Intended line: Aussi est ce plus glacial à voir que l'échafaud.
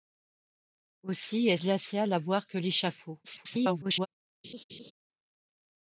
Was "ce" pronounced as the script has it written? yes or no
no